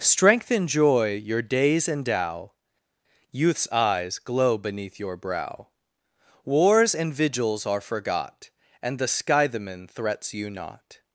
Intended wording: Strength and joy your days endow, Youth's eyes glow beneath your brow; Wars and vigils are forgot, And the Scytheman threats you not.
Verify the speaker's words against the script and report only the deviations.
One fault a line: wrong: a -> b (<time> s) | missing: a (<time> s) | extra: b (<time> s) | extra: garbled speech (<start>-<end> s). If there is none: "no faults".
no faults